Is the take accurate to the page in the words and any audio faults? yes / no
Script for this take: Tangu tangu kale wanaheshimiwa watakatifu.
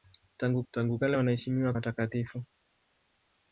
yes